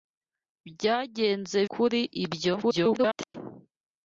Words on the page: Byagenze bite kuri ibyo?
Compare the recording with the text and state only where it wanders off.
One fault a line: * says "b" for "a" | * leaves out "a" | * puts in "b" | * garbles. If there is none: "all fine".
* leaves out "bite"
* garbles